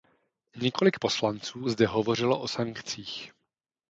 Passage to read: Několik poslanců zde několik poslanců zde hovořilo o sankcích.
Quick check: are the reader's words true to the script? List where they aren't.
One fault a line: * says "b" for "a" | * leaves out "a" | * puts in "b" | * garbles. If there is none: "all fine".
* leaves out "několik poslanců zde"